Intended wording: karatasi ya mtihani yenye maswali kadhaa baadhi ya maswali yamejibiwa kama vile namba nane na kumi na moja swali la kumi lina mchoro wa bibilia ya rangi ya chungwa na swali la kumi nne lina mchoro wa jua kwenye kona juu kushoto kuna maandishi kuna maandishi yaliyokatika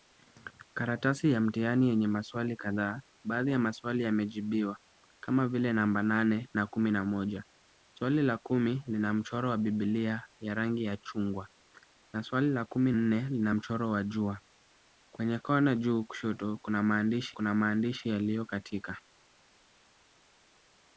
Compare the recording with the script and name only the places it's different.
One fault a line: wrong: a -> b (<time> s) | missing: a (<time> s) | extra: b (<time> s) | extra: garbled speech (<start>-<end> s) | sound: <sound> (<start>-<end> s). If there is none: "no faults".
no faults